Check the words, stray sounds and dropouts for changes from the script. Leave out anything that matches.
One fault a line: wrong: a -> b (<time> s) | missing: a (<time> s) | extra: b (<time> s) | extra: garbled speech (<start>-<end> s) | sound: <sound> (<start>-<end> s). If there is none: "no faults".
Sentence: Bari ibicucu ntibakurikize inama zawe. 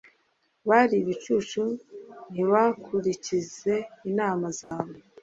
sound: dropout (4.6-4.7 s)